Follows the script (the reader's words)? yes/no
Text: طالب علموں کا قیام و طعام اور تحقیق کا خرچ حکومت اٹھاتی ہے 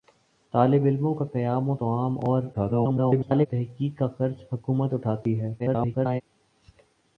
no